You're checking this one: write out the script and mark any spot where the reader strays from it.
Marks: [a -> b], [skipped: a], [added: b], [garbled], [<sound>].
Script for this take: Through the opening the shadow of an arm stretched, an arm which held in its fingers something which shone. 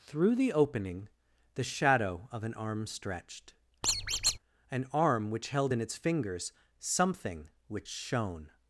Through the opening the shadow of an arm stretched, [squeak] an arm which held in its fingers something which shone.